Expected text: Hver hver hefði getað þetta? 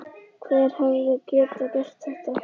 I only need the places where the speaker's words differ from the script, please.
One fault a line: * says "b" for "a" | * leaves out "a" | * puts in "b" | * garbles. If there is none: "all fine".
* leaves out "hver"
* puts in "gert"